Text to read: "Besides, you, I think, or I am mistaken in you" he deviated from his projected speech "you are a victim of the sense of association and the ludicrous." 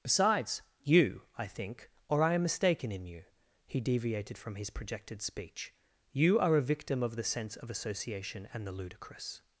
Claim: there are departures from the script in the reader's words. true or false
false